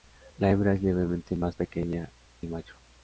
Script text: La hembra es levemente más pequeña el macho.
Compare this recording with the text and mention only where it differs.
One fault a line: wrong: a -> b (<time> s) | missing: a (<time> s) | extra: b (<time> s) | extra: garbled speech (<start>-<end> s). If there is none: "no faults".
no faults